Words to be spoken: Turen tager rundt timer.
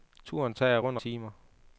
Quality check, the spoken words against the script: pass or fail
pass